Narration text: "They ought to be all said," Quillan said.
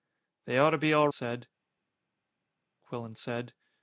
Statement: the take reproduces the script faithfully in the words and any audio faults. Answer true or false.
true